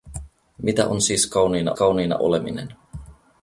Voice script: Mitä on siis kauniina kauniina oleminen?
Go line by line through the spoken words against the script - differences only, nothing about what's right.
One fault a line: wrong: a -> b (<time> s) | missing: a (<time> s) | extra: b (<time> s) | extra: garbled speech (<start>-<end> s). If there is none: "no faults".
no faults